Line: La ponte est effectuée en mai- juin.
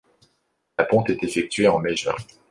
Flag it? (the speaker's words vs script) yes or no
no